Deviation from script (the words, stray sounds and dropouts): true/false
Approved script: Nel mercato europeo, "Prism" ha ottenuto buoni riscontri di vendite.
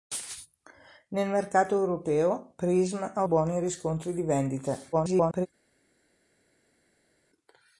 true